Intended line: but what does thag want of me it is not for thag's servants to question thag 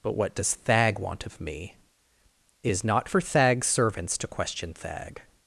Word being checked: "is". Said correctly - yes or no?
yes